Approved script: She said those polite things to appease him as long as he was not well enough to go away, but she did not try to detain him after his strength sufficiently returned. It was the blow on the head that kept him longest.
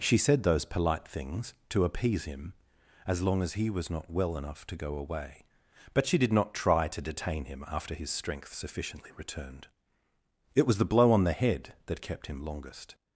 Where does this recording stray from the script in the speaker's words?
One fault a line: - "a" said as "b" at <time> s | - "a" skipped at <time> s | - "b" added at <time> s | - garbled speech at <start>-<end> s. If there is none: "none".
none